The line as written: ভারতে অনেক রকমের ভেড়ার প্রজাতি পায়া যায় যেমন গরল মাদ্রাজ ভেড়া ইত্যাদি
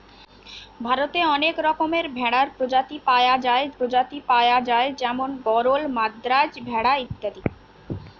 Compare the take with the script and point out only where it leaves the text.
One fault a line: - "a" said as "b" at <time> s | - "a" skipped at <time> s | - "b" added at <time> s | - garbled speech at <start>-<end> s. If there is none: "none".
- "প্রজাতি পায়া যায়" added at 3.8 s